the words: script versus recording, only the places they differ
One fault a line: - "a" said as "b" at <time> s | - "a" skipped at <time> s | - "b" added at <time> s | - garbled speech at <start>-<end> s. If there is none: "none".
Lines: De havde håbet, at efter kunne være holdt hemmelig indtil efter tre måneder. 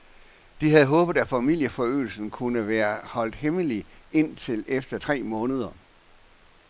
- "efter" said as "familieforøgelsen" at 1.3 s